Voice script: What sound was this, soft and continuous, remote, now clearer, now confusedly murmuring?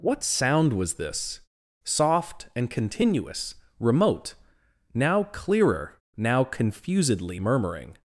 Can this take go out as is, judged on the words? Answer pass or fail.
pass